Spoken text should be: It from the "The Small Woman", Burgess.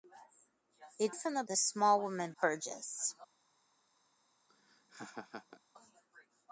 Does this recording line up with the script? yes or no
yes